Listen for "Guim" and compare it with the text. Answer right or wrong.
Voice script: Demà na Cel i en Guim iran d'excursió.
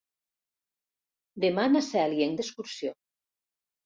wrong